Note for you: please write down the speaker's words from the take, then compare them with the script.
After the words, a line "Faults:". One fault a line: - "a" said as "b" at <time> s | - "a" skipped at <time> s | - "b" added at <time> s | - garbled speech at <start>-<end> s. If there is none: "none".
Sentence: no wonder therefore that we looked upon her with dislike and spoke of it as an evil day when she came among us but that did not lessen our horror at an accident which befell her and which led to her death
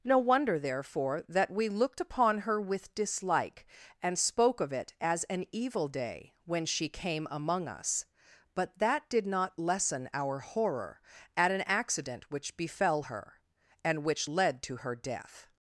no wonder therefore that we looked upon her with dislike and spoke of it as an evil day when she came among us but that did not lessen our horror at an accident which befell her and which led to her death
Faults:
none